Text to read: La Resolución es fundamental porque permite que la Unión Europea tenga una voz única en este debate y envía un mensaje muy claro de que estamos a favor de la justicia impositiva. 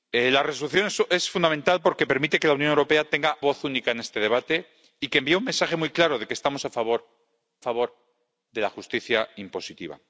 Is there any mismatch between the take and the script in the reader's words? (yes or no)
yes